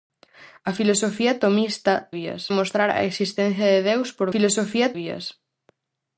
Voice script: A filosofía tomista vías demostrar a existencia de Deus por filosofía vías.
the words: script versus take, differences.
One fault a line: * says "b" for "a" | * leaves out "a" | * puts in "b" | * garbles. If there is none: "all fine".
all fine